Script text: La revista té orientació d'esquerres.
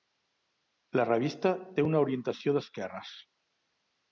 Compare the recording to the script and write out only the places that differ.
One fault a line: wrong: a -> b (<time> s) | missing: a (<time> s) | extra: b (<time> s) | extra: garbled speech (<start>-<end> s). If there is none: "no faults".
extra: una (1.9 s)